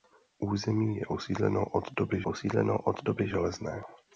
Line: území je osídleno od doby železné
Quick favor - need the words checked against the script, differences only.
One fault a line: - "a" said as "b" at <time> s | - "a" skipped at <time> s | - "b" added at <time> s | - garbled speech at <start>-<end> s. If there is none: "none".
- "osídleno od doby" added at 2.2 s